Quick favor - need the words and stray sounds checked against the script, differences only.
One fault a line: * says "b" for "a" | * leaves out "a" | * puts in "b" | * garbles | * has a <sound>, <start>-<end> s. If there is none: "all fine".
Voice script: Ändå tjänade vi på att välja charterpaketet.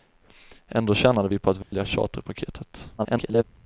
* has a dropout, 1.6-1.7 s
* garbles